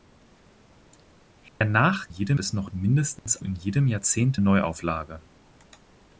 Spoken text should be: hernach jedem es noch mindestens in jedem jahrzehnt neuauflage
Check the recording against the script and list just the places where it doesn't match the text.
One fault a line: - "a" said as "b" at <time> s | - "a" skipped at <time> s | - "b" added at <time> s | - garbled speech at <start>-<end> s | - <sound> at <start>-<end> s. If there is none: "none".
- dropout at 1.5-1.6 s
- dropout at 3.2-3.3 s